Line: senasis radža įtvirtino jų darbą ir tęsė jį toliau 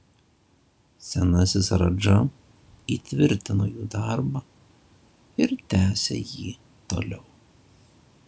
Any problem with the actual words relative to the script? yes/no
no